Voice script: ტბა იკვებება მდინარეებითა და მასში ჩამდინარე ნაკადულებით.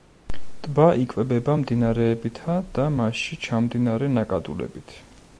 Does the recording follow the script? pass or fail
pass